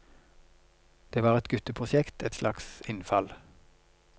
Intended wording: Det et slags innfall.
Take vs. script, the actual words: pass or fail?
fail